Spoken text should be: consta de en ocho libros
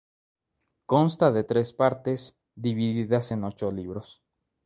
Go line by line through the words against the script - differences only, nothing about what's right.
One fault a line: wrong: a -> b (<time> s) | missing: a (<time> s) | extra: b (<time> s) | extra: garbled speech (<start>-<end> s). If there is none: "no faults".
extra: tres partes divididas (1.4 s)